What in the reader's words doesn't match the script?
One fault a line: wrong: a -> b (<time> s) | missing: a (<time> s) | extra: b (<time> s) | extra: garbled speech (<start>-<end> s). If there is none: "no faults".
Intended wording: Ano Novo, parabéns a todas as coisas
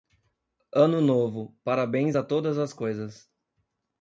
no faults